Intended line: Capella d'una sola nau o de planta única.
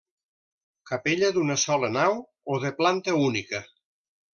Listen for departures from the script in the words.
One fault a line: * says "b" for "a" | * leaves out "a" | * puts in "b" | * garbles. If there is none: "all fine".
all fine